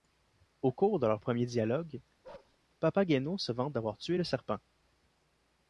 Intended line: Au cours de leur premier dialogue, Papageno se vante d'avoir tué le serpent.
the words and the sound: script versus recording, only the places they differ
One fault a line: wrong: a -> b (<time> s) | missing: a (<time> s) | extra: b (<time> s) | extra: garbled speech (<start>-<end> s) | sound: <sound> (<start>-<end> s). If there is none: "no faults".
sound: bark (2.2-2.6 s)